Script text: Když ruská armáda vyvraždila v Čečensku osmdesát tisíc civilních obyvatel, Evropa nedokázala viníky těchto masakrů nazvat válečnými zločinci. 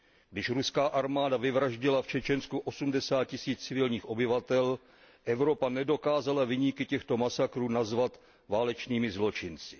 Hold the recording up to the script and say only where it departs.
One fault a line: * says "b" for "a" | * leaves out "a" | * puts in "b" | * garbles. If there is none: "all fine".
all fine